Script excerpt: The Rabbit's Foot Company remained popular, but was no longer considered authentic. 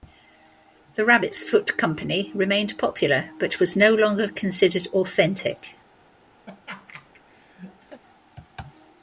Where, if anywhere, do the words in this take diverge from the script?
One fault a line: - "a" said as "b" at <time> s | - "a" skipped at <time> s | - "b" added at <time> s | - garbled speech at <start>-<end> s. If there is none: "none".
none